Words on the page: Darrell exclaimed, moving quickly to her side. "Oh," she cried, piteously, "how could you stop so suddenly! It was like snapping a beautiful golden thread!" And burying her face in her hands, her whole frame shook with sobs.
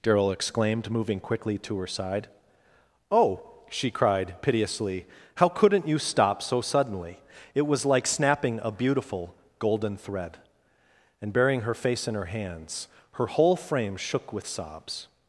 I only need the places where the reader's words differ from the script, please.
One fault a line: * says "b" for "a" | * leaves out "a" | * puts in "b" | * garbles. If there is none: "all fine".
* says "couldn't" for "could"